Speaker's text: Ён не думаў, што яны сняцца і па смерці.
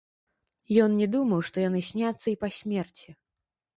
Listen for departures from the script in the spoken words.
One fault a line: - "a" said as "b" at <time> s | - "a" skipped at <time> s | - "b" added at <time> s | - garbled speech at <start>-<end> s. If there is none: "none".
none